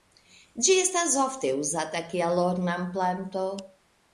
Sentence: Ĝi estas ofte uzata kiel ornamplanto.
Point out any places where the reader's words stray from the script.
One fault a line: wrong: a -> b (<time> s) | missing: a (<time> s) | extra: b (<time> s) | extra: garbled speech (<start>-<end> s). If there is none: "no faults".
no faults